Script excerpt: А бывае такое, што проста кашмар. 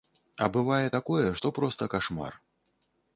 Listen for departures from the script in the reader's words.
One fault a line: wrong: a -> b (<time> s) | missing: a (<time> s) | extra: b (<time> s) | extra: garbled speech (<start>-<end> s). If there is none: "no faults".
no faults